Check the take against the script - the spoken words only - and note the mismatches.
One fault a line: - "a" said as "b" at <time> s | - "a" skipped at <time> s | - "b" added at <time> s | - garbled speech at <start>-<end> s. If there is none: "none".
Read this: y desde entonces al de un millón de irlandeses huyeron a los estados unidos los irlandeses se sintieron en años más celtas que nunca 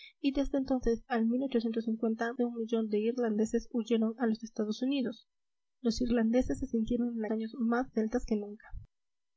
none